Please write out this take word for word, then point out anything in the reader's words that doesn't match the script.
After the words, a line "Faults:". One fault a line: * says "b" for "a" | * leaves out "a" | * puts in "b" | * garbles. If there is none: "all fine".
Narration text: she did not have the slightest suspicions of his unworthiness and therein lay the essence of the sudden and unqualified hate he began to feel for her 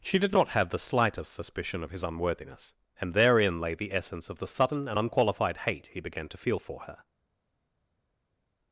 she did not have the slightest suspicion of his unworthiness and therein lay the essence of the sudden and unqualified hate he began to feel for her
Faults:
* says "suspicion" for "suspicions"